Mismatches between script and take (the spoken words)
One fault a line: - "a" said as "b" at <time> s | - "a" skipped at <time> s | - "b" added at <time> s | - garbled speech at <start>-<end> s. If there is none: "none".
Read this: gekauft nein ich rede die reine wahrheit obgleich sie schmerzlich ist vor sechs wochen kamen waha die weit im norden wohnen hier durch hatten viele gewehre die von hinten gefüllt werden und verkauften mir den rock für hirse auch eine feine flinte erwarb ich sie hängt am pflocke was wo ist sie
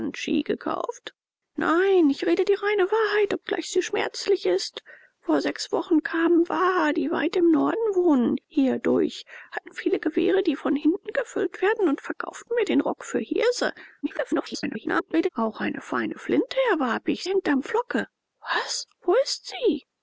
- garbled speech at 14.0-15.3 s
- "sie" skipped at 17.3 s